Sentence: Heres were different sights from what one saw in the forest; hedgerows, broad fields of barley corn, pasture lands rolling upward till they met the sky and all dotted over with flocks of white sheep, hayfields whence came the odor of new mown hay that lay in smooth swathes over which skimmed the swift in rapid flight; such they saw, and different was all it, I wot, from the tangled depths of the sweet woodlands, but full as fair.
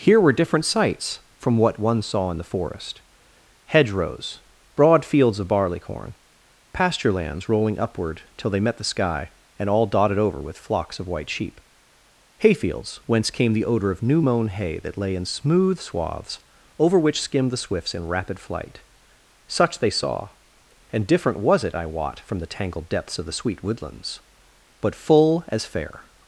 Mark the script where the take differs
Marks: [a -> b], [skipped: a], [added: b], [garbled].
[Heres -> Here] were different sights from what one saw in the forest; hedgerows, broad fields of barley corn, pasture lands rolling upward till they met the sky and all dotted over with flocks of white sheep, hayfields whence came the odor of new mown hay that lay in smooth swathes over which skimmed the [swift -> swifts] in rapid flight; such they saw, and different was [skipped: all] it, I wot, from the tangled depths of the sweet woodlands, but full as fair.